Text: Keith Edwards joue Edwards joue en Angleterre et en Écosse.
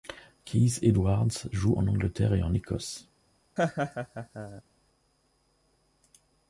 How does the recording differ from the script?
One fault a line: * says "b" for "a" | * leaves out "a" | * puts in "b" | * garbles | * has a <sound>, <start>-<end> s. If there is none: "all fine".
* leaves out "Edwards joue"
* has a laugh, 3.6-4.6 s